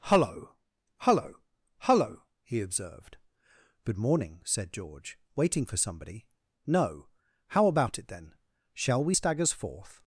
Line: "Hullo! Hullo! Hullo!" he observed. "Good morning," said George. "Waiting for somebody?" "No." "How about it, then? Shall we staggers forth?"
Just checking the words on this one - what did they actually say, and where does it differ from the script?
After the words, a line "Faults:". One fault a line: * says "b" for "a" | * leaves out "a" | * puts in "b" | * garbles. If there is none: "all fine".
"Hullo! Hullo! Hullo!" he observed. "Good morning," said George. "Waiting for somebody?" "No." "How about it, then? Shall we staggers forth?"
Faults:
all fine